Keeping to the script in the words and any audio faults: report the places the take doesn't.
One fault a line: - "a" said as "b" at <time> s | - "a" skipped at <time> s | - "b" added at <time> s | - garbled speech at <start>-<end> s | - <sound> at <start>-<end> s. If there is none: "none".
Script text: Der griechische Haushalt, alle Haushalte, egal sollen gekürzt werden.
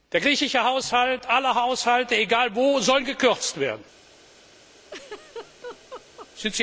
- "wo" added at 2.5 s
- laugh at 4.8-6.3 s